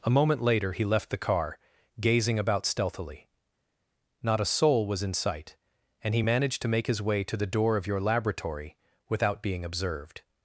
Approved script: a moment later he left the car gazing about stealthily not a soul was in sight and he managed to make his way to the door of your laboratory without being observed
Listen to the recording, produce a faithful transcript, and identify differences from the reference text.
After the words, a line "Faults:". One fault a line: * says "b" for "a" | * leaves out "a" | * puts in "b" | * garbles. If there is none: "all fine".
a moment later he left the car gazing about stealthily not a soul was in sight and he managed to make his way to the door of your laboratory without being observed
Faults:
all fine